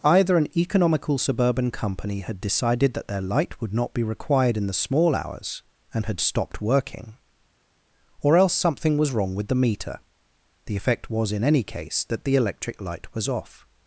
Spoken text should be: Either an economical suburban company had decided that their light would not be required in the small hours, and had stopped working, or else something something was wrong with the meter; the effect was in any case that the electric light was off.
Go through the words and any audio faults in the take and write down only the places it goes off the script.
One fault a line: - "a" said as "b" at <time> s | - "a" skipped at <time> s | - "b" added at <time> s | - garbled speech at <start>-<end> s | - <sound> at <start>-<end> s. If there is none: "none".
- "something" skipped at 9.0 s